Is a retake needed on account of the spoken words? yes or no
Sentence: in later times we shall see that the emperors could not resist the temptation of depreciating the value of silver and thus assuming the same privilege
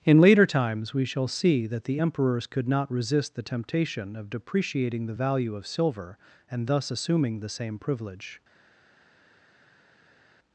no